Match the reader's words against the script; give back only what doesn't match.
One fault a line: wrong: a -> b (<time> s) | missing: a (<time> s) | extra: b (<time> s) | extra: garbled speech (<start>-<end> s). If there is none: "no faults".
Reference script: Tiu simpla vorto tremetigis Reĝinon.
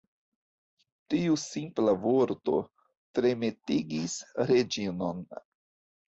no faults